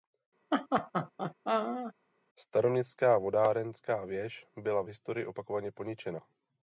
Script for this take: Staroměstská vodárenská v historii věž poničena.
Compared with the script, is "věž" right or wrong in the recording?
wrong